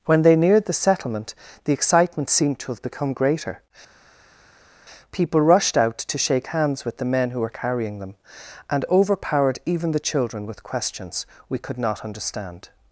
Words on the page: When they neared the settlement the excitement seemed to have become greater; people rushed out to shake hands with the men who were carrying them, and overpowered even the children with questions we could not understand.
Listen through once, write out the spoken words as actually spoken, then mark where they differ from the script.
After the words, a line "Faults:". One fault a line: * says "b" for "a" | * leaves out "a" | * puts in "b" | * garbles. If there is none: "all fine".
When they neared the settlement the excitement seemed to have become greater; people rushed out to shake hands with the men who were carrying them, and overpowered even the children with questions we could not understand.
Faults:
all fine